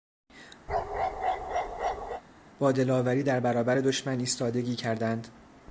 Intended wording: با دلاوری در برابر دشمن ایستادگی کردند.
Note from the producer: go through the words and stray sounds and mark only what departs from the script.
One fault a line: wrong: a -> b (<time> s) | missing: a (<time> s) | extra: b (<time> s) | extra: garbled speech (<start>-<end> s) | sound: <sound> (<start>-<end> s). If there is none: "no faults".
sound: bark (0.7-2.2 s)